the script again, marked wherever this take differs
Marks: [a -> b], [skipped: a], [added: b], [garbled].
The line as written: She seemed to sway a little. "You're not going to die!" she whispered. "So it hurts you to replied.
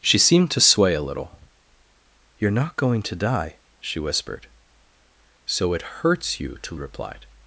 She seemed to sway a little. "You're not going to die!" she whispered. "So it hurts you to replied.